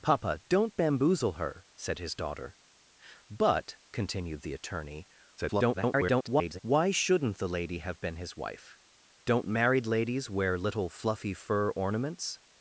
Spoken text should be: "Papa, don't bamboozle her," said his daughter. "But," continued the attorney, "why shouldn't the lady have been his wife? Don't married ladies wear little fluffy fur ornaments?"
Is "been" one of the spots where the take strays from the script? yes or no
no